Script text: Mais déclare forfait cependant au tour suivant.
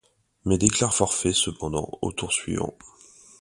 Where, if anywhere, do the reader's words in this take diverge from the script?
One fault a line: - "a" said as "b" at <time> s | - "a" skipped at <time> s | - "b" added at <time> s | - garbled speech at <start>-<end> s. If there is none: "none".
none